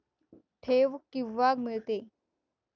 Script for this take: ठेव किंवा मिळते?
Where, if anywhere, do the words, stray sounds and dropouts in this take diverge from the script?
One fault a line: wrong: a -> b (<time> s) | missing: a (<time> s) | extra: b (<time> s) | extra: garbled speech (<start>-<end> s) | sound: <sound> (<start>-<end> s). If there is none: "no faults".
no faults